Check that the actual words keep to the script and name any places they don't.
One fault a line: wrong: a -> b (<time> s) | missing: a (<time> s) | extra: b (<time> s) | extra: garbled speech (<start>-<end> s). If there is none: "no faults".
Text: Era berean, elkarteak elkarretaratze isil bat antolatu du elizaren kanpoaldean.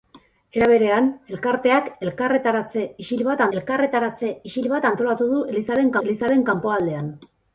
extra: elkarretaratze isil bat (3.6 s)
extra: elizaren (6.1 s)